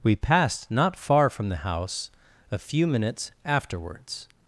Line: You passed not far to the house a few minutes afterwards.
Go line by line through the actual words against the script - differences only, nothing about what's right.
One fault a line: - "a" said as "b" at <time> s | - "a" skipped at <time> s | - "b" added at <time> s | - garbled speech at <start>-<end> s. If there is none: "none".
- "You" said as "We" at 0.0 s
- "to" said as "from" at 1.3 s